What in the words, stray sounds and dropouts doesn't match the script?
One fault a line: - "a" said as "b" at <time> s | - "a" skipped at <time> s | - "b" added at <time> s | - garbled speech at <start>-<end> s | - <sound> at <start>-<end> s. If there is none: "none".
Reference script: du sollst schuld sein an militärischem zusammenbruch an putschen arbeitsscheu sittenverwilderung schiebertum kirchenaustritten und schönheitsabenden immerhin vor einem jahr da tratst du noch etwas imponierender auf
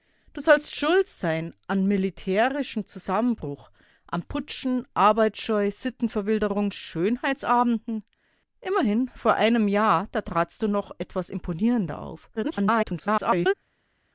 - "schiebertum kirchenaustritten und" skipped at 6.7 s
- garbled speech at 12.4-13.5 s